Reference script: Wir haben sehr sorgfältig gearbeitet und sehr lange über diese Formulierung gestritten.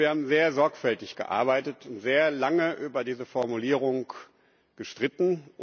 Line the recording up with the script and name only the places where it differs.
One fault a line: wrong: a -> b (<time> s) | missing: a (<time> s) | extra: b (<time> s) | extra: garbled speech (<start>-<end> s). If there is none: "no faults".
no faults